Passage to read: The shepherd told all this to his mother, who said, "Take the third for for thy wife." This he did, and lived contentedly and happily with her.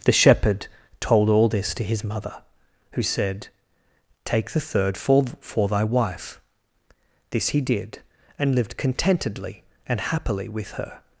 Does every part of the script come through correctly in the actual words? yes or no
yes